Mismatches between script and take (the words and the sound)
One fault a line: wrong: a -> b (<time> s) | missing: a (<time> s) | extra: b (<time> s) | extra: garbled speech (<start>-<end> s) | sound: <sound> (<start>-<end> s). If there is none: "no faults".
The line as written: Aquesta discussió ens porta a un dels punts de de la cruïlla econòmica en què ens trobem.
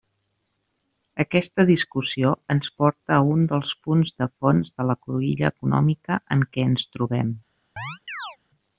extra: fons (4.4 s)
sound: chirp (7.8-8.4 s)